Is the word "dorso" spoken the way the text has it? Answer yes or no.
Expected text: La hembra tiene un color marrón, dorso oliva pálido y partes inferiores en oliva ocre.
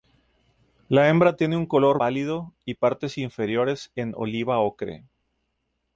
no